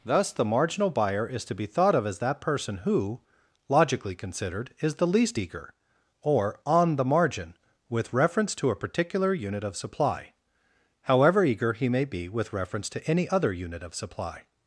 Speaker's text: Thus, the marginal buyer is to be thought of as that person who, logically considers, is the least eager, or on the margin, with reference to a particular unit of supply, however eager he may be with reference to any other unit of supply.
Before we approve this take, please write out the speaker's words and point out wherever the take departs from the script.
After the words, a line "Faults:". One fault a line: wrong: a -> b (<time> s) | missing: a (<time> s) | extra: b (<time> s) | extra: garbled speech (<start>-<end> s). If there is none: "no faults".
Thus, the marginal buyer is to be thought of as that person who, logically considered, is the least eager, or on the margin, with reference to a particular unit of supply, however eager he may be with reference to any other unit of supply.
Faults:
wrong: considers -> considered (4.2 s)